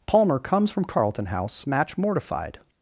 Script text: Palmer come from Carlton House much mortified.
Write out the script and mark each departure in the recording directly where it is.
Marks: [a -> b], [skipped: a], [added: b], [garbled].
Palmer [come -> comes] from Carlton House [much -> match] mortified.